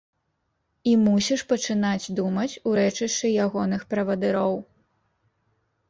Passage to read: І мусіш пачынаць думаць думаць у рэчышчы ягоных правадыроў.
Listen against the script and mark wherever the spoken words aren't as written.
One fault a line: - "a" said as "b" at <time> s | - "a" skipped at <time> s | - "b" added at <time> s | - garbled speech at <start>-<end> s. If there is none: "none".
- "думаць" skipped at 2.5 s